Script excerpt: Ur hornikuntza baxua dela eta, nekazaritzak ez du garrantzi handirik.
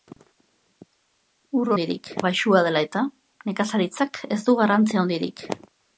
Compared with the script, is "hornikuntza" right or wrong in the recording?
wrong